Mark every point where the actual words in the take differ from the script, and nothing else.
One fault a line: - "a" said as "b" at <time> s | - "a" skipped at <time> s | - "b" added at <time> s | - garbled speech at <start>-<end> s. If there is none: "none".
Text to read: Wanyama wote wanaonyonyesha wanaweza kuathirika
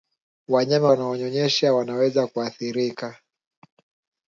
- "wote" skipped at 0.9 s